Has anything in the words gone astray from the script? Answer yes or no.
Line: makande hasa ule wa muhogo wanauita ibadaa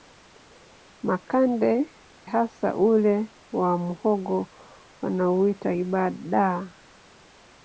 no